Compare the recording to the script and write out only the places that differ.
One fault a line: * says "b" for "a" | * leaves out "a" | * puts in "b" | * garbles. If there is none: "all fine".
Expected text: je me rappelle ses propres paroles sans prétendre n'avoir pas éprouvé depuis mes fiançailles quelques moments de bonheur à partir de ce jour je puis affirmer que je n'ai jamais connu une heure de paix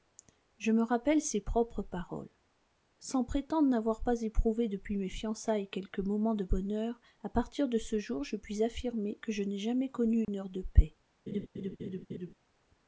all fine